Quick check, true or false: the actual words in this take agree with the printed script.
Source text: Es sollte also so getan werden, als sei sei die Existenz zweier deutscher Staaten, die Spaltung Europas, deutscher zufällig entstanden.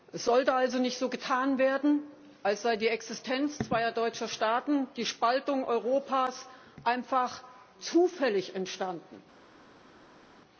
false